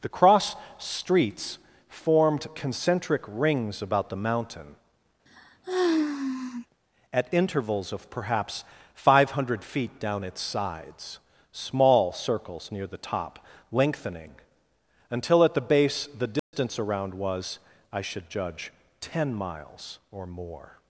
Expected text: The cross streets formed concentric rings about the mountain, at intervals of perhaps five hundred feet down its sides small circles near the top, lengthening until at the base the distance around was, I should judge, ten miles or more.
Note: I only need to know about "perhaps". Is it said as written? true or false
true